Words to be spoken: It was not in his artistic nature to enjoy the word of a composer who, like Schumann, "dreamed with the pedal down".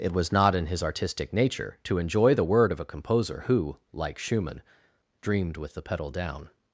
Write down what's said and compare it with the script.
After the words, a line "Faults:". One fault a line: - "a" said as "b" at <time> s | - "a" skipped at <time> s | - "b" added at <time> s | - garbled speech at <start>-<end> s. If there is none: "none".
It was not in his artistic nature to enjoy the word of a composer who, like Schumann, "dreamed with the pedal down".
Faults:
none